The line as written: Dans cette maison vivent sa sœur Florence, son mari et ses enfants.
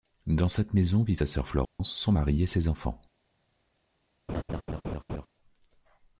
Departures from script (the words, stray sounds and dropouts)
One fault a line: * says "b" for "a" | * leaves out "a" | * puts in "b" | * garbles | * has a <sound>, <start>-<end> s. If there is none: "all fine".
* has a dropout, 1.6-1.8 s
* has a laugh, 4.3-5.3 s